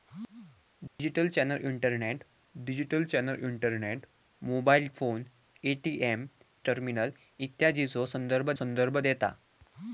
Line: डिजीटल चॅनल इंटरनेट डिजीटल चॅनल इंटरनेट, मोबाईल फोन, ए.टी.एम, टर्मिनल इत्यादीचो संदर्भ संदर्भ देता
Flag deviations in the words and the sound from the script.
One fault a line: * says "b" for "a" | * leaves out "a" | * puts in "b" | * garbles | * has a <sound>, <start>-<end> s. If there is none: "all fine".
* has a dropout, 0.9-1.0 s